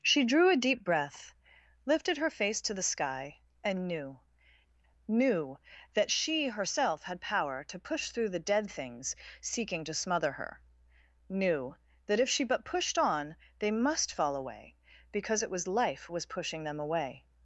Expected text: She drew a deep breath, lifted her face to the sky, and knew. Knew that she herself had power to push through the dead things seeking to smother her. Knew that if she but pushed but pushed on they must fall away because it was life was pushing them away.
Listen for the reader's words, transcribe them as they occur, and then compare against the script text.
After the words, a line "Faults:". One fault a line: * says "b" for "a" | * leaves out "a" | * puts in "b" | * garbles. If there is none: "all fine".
She drew a deep breath, lifted her face to the sky, and knew. Knew that she herself had power to push through the dead things seeking to smother her. Knew that if she but pushed on they must fall away because it was life was pushing them away.
Faults:
* leaves out "but pushed"